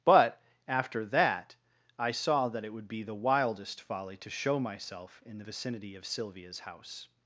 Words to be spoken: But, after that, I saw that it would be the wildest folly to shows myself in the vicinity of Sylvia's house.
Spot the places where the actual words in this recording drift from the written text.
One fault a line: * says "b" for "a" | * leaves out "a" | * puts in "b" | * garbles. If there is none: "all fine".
* says "show" for "shows"